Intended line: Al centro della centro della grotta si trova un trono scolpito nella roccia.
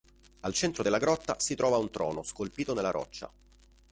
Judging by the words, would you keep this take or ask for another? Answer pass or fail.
fail